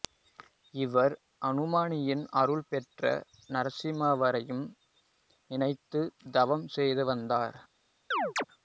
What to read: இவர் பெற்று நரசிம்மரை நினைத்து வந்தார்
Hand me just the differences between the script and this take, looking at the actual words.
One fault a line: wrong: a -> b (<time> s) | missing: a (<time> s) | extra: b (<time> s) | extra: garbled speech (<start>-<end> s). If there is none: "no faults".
extra: அனுமானின் அருள் (1.4 s)
extra: தவம் செய்து (6.3 s)